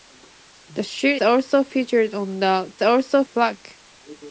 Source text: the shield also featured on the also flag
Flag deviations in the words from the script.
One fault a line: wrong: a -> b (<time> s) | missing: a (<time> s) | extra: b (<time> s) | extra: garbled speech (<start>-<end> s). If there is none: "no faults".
no faults